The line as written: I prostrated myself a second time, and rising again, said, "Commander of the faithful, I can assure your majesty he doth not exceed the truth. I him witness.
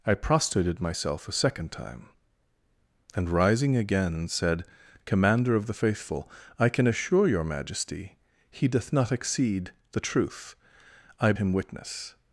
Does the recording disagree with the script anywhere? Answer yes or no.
no